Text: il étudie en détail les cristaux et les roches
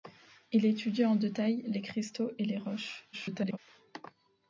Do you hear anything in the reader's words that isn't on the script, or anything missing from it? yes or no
yes